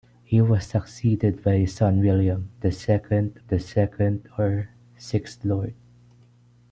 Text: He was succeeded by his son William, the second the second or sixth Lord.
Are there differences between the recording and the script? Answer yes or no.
no